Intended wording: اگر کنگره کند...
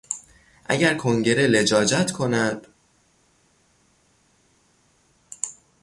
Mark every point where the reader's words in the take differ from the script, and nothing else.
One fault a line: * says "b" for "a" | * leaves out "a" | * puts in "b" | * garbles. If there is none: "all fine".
* puts in "لجاجت"